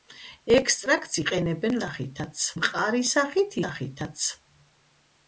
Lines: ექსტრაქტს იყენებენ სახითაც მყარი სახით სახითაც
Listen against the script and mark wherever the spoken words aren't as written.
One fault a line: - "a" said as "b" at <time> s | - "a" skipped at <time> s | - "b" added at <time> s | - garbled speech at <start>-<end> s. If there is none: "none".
none